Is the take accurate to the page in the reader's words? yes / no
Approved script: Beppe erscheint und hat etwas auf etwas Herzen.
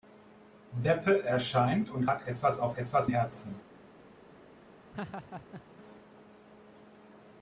yes